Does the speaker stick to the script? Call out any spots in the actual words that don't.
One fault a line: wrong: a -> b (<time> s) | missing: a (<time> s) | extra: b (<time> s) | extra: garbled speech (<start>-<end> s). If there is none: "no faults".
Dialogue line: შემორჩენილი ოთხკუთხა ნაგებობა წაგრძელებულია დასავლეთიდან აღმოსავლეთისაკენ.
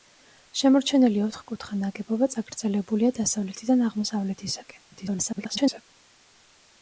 extra: garbled speech (4.9-5.8 s)